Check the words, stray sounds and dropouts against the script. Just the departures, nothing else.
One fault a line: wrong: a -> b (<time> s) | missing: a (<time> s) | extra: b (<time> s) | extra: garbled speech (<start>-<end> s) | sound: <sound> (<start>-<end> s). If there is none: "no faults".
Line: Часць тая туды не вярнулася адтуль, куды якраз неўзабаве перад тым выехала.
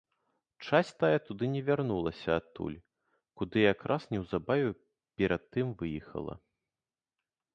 no faults